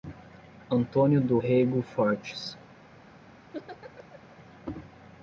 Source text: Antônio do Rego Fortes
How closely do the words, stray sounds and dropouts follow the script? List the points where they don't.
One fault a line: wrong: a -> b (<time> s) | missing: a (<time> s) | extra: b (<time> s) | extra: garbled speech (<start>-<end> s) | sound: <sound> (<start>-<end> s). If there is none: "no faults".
sound: laugh (3.5-4.4 s)